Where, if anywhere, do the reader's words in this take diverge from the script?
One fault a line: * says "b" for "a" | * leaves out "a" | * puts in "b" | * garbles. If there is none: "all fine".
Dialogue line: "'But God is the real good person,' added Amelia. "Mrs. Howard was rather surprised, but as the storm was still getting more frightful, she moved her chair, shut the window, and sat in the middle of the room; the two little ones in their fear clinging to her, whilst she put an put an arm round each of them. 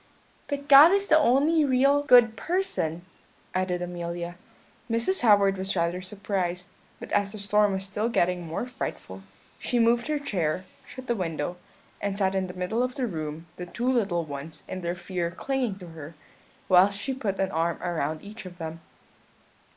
* puts in "only"
* leaves out "put an"